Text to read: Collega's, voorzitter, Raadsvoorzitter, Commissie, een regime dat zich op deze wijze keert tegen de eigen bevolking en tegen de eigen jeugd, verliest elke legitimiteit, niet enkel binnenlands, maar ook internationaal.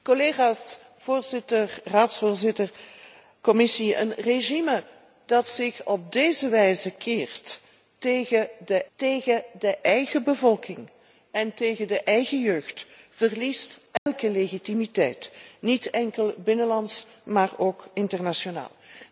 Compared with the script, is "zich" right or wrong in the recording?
right